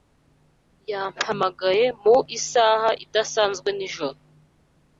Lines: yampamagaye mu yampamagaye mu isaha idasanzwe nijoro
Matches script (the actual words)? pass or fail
fail